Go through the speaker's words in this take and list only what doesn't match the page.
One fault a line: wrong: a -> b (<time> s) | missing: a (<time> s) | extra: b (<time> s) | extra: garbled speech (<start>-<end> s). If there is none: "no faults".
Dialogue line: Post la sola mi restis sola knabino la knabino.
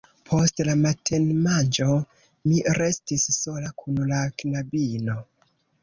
wrong: sola -> matenmanĝo (0.8 s)
wrong: knabino -> kun (3.8 s)